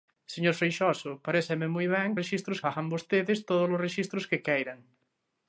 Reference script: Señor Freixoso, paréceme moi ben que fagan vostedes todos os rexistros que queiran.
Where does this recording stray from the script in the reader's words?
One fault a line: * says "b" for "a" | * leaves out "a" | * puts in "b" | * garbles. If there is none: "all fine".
* says "rexistros" for "que"